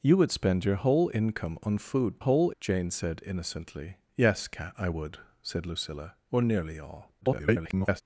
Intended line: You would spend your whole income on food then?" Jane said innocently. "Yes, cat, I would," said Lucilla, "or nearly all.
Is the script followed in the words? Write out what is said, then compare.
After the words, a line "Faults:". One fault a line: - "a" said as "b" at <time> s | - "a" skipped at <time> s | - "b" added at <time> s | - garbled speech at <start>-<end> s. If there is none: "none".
You would spend your whole income on food whole?" Jane said innocently. "Yes, cat, I would," said Lucilla, "or nearly all. [garbled]
Faults:
- "then" said as "whole" at 2.2 s
- garbled speech at 7.2-8.0 s